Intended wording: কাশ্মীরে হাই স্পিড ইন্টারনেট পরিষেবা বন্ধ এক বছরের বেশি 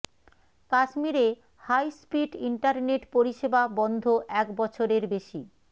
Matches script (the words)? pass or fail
pass